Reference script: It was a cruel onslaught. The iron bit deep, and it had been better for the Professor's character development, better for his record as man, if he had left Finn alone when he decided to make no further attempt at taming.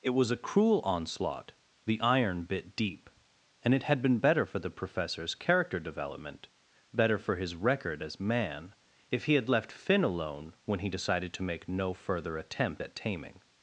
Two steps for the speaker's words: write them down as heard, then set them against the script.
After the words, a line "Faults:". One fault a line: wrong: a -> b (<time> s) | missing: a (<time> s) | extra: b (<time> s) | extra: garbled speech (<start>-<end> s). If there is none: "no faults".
It was a cruel onslaught. The iron bit deep, and it had been better for the Professor's character development, better for his record as man, if he had left Finn alone when he decided to make no further attempt at taming.
Faults:
no faults